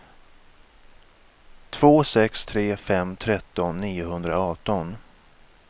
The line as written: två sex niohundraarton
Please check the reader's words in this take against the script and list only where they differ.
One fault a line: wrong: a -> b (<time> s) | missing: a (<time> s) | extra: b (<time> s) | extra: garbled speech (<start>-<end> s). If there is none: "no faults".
extra: tre fem tretton (2.5 s)